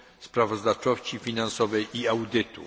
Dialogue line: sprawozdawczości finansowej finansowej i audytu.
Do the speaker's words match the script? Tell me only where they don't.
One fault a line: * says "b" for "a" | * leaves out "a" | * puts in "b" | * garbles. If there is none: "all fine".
* leaves out "finansowej"